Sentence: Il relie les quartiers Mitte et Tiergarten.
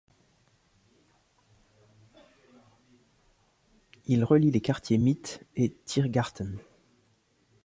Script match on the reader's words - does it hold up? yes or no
yes